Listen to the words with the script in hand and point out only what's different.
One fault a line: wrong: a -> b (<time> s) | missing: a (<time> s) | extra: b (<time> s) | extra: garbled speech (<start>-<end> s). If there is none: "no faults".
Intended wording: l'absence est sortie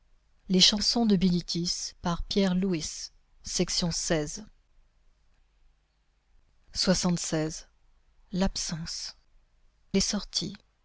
no faults